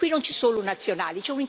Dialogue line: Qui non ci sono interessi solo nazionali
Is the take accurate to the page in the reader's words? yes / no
no